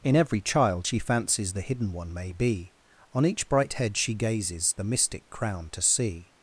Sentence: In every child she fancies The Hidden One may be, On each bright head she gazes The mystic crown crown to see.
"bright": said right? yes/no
yes